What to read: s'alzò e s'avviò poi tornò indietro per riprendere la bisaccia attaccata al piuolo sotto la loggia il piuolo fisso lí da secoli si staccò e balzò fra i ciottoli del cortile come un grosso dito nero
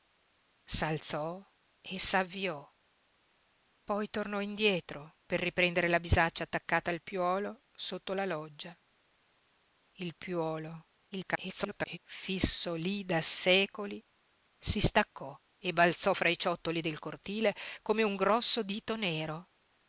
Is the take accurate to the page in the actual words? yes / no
no